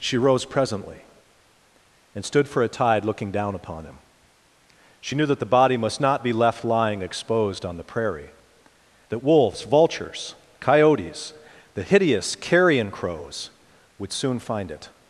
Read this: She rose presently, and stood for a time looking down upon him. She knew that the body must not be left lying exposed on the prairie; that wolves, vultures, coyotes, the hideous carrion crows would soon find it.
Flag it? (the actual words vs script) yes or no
yes